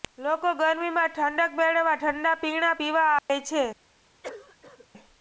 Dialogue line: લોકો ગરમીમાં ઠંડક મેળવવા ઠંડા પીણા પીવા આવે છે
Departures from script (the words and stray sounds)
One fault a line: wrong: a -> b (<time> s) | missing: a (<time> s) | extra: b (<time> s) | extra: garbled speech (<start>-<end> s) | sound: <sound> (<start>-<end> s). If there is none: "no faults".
sound: dropout (3.2-3.3 s)
sound: cough (4.2-4.9 s)